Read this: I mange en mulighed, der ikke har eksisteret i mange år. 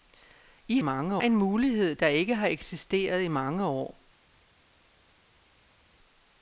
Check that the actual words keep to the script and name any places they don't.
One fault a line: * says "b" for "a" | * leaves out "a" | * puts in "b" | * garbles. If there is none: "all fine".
all fine